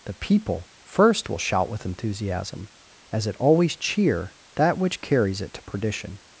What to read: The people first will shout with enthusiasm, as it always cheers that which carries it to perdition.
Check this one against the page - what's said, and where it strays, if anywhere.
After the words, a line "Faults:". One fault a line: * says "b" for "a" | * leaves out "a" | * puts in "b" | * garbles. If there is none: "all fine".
The people first will shout with enthusiasm, as it always cheer that which carries it to perdition.
Faults:
* says "cheer" for "cheers"